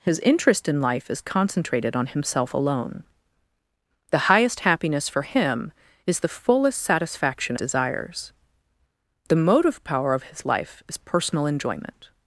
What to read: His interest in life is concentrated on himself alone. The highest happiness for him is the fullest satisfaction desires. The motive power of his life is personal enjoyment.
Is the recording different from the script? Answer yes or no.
no